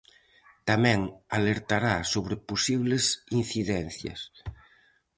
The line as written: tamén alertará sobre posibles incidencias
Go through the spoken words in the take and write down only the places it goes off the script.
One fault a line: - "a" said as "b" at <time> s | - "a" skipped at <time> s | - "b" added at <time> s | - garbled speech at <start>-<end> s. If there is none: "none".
none